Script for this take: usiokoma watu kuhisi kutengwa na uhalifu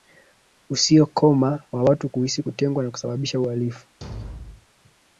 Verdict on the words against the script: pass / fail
fail